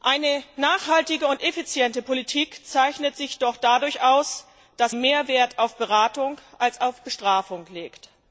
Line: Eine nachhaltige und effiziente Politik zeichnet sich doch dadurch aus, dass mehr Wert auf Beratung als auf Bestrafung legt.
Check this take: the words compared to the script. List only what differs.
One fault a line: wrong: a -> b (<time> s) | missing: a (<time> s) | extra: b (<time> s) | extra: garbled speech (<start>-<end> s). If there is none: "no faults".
no faults